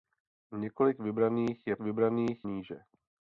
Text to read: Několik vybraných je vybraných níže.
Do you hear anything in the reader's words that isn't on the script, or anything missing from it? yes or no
no